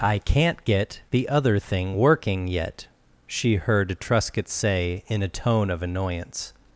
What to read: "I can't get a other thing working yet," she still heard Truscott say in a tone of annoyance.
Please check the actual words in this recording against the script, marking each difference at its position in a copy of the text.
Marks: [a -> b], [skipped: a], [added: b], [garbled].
"I can't get [a -> the] other thing working yet," she [skipped: still] heard Truscott say in a tone of annoyance.